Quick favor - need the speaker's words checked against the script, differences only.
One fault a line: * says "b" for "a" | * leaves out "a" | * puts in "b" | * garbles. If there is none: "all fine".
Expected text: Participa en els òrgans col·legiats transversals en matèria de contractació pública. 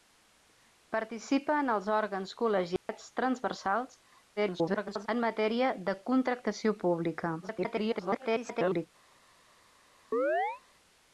* garbles
* garbles